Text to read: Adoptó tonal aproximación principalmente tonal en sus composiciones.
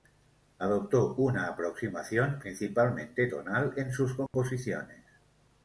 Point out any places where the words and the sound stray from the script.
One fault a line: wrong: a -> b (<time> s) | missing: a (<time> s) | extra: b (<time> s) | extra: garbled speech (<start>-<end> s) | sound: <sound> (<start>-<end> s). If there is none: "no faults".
wrong: tonal -> una (1.1 s)
sound: dropout (4.3-4.3 s)